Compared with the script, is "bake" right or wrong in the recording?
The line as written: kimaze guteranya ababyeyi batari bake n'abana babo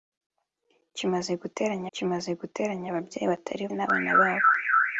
wrong